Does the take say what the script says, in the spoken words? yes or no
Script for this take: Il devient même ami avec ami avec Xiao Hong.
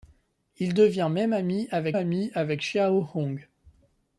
yes